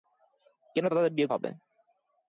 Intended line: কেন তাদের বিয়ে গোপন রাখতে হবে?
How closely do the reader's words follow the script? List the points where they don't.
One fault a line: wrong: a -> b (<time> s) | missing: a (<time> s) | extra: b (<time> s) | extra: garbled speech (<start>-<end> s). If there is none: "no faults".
missing: গোপন রাখতে (1.3 s)